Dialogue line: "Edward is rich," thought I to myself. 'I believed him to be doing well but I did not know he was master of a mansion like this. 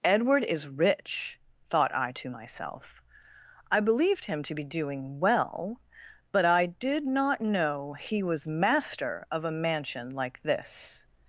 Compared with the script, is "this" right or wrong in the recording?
right